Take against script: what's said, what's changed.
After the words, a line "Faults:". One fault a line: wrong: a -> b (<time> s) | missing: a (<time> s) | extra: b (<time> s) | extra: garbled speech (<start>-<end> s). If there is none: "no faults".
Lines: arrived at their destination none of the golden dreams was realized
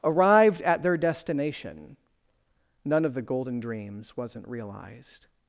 arrived at their destination none of the golden dreams wasn't realized
Faults:
wrong: was -> wasn't (4.2 s)